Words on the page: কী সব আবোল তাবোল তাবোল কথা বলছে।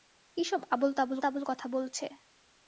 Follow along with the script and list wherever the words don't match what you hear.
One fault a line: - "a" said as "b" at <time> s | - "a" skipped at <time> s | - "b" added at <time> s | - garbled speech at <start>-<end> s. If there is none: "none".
none